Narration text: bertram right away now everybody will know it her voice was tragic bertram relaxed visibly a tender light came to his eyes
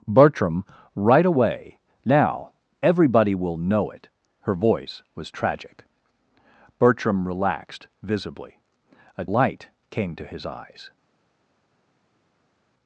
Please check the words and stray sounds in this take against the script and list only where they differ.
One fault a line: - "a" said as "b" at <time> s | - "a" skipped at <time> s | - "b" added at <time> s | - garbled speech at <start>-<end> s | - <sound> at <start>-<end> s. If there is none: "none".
- "tender" skipped at 9.2 s